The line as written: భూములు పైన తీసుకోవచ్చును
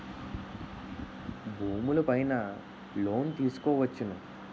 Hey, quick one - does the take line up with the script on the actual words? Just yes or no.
no